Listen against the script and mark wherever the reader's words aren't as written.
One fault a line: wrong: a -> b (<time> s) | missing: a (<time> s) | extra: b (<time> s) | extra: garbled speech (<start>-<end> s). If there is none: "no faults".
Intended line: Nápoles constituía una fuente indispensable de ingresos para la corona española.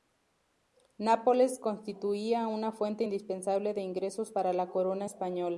no faults